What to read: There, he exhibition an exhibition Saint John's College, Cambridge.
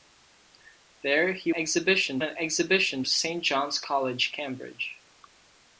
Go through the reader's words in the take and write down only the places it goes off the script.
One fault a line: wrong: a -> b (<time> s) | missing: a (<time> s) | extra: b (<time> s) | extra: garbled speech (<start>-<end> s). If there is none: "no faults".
no faults